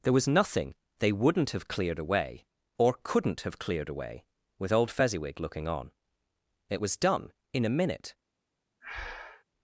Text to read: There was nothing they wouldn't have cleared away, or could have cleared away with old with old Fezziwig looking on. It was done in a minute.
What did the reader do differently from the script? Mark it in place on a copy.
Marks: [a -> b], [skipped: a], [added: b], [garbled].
There was nothing they wouldn't have cleared away, or [could -> couldn't] have cleared away with old [skipped: with old] Fezziwig looking on. It was done in a minute.